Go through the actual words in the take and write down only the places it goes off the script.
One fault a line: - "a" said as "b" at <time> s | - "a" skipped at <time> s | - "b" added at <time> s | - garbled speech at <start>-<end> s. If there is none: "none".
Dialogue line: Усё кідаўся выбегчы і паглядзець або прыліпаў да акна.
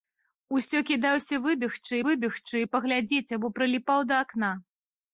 - "выбегчы" added at 2.1 s